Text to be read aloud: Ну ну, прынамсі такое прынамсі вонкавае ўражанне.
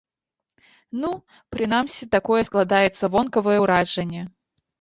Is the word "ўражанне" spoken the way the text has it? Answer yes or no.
yes